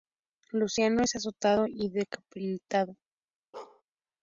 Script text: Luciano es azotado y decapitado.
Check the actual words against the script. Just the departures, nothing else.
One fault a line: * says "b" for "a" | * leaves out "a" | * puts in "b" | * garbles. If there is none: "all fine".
all fine